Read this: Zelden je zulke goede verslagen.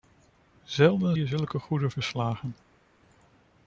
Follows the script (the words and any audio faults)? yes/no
yes